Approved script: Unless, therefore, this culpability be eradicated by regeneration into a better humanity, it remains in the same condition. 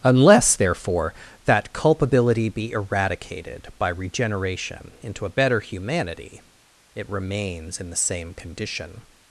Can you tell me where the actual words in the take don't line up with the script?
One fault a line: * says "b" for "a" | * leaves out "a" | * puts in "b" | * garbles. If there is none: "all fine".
* says "that" for "this"